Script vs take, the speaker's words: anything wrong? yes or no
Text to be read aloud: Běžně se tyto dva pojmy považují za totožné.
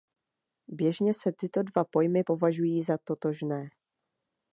no